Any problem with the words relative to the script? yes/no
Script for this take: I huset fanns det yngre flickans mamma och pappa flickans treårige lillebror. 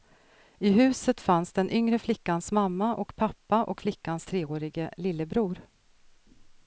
yes